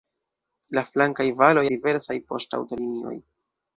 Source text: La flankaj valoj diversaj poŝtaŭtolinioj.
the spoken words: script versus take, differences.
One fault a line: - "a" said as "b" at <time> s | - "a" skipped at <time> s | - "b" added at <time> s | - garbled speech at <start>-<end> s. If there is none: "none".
none